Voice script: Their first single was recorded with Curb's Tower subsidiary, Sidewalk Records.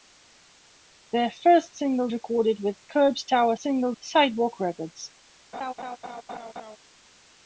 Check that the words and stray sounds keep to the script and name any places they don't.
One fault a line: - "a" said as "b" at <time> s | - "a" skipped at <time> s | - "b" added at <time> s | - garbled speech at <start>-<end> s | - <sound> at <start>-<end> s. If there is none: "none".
- "was" skipped at 2.1 s
- "subsidiary" said as "single" at 3.6 s
- laugh at 5.5-6.8 s